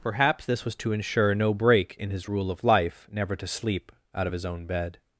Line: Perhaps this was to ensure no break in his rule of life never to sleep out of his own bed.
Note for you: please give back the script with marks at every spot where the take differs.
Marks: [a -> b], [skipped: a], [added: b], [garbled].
Perhaps this was to ensure no break in his rule of life never to sleep out of his own bed.